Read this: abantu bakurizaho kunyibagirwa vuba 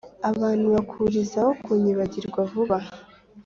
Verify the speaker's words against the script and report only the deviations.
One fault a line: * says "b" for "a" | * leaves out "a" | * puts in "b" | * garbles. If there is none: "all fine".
all fine